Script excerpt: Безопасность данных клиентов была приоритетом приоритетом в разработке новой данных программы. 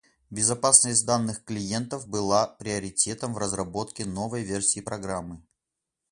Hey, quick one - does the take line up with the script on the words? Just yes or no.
no